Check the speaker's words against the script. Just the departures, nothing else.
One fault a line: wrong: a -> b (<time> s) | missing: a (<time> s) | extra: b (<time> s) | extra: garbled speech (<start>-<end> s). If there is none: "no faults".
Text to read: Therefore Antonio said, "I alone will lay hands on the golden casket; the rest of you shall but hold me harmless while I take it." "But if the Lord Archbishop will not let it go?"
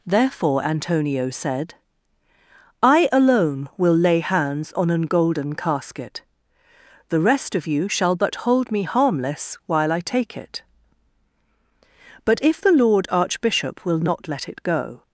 wrong: the -> an (4.9 s)